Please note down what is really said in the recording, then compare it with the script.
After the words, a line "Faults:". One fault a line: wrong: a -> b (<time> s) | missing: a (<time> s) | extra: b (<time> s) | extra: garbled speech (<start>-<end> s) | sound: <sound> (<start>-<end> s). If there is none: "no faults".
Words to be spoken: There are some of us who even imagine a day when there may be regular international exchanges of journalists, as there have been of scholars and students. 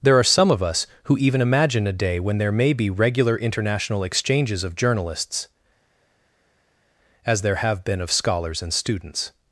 There are some of us who even imagine a day when there may be regular international exchanges of journalists, as there have been of scholars and students.
Faults:
no faults